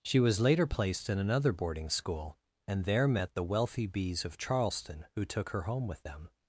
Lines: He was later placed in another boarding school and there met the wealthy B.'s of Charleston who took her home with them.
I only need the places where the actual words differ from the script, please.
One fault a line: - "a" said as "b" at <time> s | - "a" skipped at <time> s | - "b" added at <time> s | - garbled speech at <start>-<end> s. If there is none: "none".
- "He" said as "She" at 0.0 s